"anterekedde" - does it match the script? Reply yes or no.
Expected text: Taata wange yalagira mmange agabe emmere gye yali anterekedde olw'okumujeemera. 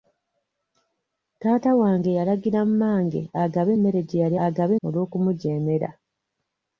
no